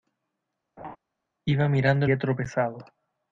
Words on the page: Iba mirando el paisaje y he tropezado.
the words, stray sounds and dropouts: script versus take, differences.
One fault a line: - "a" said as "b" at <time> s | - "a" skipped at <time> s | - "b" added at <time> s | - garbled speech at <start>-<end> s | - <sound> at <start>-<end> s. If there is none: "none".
- laugh at 0.8-1.0 s
- "el paisaje y" skipped at 2.0 s